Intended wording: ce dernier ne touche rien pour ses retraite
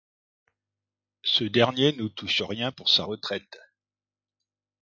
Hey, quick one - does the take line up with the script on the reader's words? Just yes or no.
no